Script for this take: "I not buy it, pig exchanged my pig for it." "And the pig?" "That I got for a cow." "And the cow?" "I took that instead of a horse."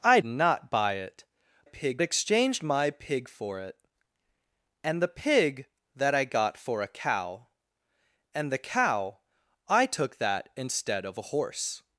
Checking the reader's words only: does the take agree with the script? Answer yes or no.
yes